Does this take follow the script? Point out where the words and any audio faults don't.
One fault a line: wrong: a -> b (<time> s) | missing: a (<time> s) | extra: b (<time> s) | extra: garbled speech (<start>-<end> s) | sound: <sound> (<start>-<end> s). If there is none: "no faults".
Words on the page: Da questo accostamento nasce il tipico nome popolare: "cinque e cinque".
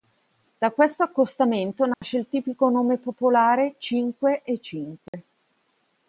sound: dropout (1.9-2.0 s)
sound: dropout (5.1-5.1 s)